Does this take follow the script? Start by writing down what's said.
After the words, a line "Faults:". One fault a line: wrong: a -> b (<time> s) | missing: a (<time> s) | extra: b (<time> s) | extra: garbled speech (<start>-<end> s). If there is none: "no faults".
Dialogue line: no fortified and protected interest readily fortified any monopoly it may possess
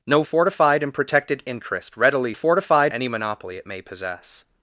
no fortified and protected interest readily fortified any monopoly it may possess
Faults:
no faults